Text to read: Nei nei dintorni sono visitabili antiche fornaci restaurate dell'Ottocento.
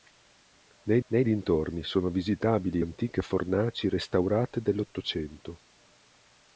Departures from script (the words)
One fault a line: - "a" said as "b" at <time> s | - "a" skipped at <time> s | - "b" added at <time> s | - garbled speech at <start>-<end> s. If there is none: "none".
none